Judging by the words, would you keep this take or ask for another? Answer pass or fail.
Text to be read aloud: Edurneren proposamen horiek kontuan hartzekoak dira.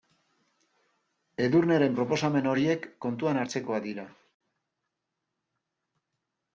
pass